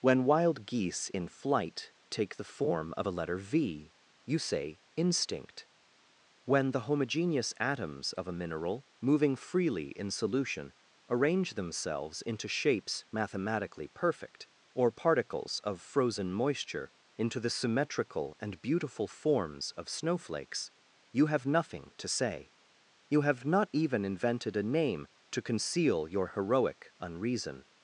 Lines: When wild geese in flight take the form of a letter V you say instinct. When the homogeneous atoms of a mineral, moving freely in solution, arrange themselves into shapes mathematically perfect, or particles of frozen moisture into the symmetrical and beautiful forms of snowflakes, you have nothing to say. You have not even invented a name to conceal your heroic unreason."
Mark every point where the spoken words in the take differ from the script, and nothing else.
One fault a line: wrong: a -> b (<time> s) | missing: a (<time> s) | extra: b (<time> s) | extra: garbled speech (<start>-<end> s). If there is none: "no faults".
no faults